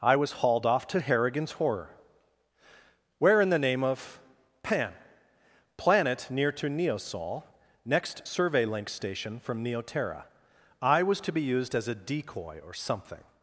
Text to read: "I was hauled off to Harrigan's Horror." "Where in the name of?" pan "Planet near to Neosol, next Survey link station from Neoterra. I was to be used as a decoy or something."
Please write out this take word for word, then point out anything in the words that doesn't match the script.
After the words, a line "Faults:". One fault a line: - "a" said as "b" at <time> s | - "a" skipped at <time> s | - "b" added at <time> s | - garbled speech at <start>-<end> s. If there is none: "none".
"I was hauled off to Harrigan's Horror." "Where in the name of?" pan "Planet near to Neosol, next Survey link station from Neoterra. I was to be used as a decoy or something."
Faults:
none